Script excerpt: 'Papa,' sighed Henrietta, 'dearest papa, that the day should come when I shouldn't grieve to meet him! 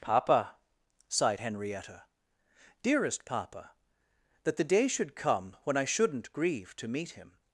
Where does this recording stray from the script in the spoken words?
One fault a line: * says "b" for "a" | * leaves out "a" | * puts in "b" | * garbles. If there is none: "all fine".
all fine